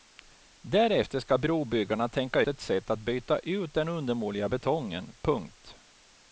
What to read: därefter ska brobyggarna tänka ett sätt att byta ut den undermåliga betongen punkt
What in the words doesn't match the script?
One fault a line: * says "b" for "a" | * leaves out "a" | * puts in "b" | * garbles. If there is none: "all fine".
all fine